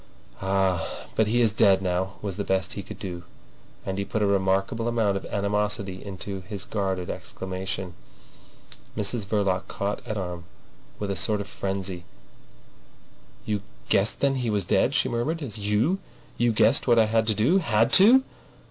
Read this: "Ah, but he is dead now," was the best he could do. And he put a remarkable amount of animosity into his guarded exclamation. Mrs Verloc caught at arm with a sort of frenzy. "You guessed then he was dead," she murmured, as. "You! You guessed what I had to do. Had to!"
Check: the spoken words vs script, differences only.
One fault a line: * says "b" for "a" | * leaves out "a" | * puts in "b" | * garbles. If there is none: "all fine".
all fine